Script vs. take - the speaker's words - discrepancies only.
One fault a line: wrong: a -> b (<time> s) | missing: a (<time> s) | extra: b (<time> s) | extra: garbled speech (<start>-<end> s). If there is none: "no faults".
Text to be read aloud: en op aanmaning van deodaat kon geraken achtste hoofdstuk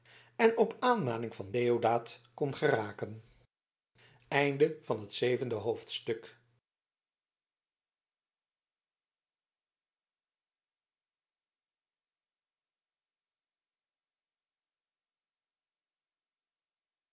no faults